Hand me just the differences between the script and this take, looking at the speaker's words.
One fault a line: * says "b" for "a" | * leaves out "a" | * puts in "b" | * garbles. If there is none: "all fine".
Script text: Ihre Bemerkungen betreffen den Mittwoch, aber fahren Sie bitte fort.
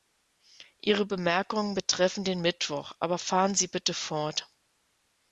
all fine